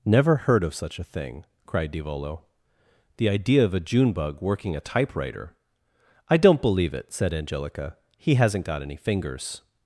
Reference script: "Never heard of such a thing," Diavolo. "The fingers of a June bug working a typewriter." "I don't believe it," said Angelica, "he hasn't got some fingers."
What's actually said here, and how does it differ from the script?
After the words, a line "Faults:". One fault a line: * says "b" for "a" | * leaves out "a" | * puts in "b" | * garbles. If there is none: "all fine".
"Never heard of such a thing," cried Diavolo. "The idea of a June bug working a typewriter." "I don't believe it," said Angelica, "he hasn't got any fingers."
Faults:
* puts in "cried"
* says "idea" for "fingers"
* says "any" for "some"